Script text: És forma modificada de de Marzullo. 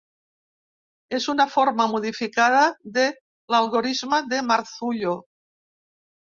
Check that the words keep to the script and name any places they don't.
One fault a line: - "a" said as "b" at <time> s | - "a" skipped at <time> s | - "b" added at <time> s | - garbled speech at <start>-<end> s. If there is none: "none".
- "una" added at 1.3 s
- "l'algorisme" added at 3.5 s